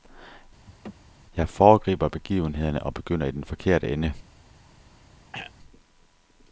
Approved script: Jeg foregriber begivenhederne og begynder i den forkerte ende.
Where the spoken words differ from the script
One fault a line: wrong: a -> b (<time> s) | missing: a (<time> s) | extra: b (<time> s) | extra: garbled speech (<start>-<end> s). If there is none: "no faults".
no faults